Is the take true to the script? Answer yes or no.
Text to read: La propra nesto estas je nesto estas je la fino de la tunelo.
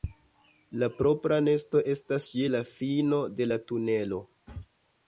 no